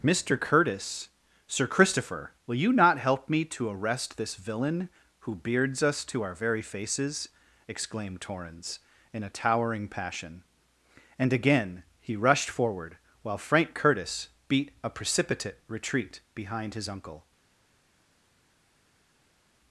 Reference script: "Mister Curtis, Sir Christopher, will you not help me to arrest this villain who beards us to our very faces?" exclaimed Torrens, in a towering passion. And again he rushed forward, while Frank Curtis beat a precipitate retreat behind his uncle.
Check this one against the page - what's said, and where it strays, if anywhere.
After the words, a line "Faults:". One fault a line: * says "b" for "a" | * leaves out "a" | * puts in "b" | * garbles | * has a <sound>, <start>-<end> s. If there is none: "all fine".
"Mister Curtis, Sir Christopher, will you not help me to arrest this villain who beards us to our very faces?" exclaimed Torrens, in a towering passion. And again he rushed forward, while Frank Curtis beat a precipitate retreat behind his uncle.
Faults:
all fine